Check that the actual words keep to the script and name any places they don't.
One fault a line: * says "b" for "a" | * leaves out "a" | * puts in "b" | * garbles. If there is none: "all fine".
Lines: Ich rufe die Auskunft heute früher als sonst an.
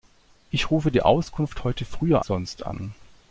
* leaves out "als"